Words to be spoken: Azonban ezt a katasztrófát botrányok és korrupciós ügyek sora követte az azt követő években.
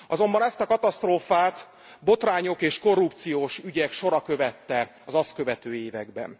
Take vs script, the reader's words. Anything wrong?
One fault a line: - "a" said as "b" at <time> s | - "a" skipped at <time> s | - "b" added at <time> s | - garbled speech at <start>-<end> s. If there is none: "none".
none